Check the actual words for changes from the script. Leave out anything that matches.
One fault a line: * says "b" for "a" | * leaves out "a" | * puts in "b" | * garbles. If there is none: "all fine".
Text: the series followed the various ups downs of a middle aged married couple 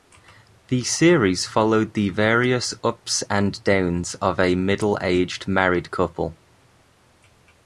* puts in "and"